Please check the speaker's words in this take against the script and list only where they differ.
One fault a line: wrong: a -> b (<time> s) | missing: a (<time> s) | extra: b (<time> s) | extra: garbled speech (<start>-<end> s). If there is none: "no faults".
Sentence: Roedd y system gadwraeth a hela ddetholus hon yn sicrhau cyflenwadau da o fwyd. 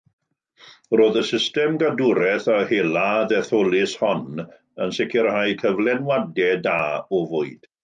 no faults